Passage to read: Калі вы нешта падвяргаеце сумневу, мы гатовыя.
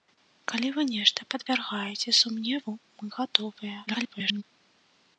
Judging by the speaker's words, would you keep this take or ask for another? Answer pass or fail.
fail